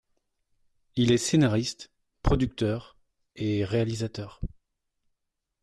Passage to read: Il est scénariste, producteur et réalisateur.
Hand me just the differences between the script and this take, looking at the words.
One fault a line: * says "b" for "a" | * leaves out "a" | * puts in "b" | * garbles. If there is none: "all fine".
all fine